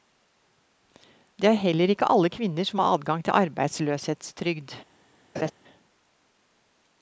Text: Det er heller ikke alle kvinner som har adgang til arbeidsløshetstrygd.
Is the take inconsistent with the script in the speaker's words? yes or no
no